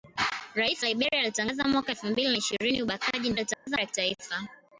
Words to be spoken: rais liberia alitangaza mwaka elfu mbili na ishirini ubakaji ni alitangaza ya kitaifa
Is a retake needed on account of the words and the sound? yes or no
yes